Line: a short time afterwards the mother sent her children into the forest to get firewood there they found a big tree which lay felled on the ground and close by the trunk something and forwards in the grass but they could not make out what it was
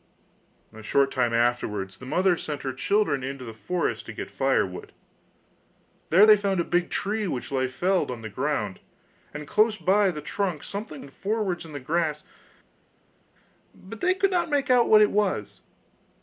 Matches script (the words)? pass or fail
pass